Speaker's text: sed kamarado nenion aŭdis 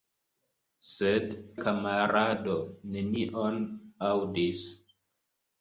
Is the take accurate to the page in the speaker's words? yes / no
yes